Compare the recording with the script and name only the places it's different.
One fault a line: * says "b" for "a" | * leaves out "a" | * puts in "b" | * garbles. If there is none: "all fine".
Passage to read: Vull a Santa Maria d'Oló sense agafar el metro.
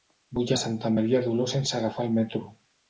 all fine